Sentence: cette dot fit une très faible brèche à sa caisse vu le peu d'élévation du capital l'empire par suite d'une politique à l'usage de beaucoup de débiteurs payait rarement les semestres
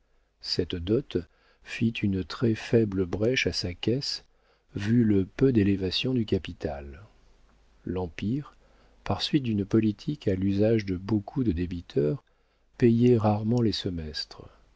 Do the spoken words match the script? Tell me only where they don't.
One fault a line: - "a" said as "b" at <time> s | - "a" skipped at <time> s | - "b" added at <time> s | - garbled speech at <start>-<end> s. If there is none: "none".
none